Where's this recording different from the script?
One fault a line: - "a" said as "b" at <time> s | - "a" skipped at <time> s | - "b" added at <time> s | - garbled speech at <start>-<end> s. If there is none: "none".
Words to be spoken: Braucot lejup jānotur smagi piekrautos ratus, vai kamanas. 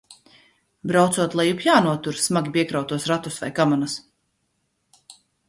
none